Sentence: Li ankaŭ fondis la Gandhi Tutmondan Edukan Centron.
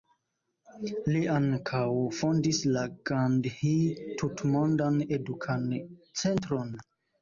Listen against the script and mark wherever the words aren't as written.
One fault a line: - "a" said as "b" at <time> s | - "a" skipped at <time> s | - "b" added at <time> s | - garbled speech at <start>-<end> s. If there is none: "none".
none